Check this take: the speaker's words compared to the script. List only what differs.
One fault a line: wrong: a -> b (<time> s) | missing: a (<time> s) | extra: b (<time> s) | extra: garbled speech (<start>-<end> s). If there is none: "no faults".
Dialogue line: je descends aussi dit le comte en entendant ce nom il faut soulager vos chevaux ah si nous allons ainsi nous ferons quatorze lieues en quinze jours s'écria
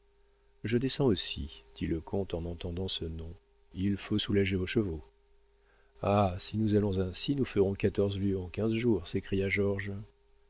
no faults